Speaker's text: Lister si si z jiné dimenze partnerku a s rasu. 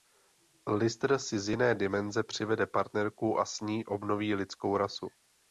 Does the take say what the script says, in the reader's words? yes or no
no